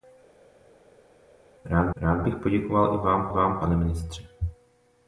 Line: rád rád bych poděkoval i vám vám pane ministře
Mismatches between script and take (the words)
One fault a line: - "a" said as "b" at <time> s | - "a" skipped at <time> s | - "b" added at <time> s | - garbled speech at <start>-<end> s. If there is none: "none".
none